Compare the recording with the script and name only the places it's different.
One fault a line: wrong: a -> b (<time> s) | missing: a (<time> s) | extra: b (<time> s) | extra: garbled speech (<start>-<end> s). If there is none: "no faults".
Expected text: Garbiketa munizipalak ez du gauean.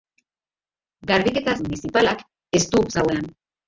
no faults